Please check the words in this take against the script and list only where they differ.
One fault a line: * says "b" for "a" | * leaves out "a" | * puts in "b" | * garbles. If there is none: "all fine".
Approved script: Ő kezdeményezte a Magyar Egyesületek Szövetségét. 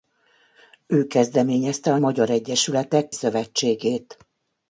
all fine